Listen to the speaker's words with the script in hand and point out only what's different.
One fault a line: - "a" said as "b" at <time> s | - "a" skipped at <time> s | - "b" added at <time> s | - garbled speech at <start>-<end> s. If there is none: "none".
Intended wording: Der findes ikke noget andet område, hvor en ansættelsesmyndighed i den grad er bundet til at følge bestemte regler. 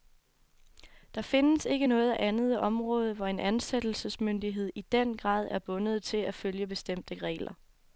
none